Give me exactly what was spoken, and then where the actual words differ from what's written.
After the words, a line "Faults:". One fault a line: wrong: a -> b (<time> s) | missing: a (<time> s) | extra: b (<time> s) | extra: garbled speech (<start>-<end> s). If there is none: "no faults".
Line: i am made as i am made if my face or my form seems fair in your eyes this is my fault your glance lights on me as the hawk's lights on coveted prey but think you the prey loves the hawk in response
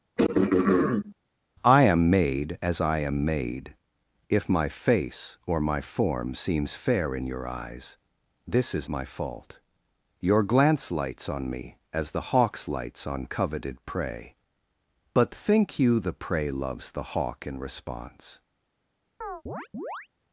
i am made as i am made if my face or my form seems fair in your eyes this is my fault your glance lights on me as the hawk's lights on coveted prey but think you the prey loves the hawk in response
Faults:
no faults